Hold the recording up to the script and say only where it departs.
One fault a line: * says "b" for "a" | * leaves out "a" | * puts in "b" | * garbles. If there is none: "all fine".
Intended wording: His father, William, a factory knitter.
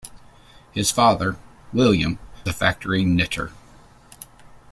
all fine